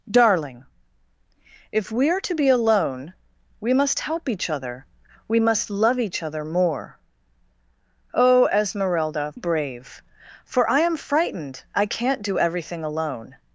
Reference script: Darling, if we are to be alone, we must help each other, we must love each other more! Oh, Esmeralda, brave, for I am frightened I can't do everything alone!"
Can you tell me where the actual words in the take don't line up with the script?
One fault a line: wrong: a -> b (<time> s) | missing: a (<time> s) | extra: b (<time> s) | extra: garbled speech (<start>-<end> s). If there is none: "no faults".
no faults